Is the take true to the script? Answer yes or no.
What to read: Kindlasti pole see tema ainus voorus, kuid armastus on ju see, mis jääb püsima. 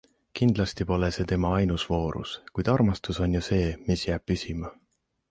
yes